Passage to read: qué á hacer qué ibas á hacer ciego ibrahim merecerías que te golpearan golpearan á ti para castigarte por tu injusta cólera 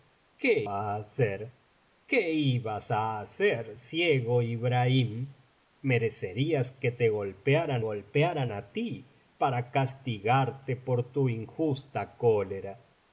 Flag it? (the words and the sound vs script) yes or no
no